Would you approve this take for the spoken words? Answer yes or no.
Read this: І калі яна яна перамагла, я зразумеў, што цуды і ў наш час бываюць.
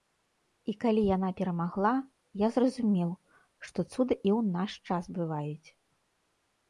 no